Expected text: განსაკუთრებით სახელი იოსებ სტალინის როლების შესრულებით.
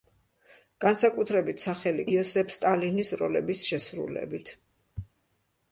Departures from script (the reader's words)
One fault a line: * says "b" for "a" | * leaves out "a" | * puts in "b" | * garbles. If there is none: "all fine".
all fine